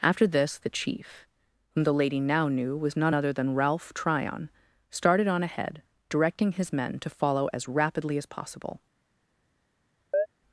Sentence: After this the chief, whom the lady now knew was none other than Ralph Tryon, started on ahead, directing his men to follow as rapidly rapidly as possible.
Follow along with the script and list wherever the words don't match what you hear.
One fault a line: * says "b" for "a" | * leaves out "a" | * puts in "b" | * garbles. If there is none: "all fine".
* leaves out "rapidly"